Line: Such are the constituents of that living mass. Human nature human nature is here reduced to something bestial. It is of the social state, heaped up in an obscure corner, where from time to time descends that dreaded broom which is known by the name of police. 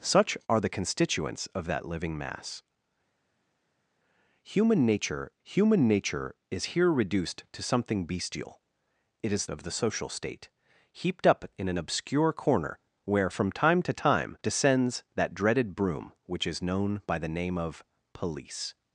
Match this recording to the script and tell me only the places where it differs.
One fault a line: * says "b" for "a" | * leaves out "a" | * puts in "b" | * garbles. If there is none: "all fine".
all fine